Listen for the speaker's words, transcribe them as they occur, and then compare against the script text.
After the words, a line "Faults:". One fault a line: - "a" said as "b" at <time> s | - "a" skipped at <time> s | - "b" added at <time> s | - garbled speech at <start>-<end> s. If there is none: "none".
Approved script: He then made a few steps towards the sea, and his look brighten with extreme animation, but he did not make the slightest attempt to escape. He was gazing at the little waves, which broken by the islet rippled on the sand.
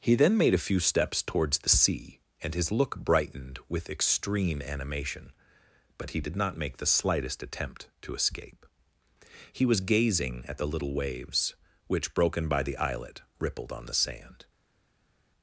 He then made a few steps towards the sea, and his look brightened with extreme animation, but he did not make the slightest attempt to escape. He was gazing at the little waves, which broken by the islet rippled on the sand.
Faults:
- "brighten" said as "brightened" at 3.0 s